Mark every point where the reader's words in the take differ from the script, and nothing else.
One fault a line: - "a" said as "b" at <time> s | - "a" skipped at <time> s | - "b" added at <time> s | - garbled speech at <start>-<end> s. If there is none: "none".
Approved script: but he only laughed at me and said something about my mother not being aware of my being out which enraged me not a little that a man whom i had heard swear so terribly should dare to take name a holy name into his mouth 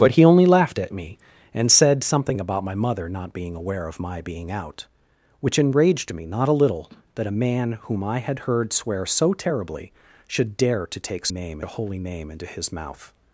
none